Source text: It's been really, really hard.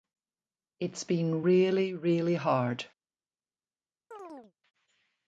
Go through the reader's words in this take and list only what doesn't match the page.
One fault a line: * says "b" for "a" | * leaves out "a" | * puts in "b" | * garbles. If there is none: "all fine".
all fine